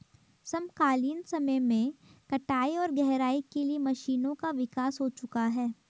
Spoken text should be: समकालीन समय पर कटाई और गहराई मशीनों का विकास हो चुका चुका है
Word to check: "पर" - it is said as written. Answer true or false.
false